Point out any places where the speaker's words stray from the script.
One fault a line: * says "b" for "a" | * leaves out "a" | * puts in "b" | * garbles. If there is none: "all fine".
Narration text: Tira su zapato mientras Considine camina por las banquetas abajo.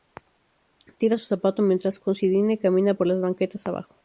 all fine